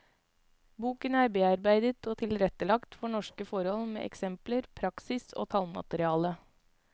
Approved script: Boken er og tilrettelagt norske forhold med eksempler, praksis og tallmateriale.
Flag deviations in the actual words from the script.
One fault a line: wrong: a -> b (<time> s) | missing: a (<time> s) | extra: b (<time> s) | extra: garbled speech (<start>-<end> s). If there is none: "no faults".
extra: bearbeidet (1.4 s)
extra: for (3.0 s)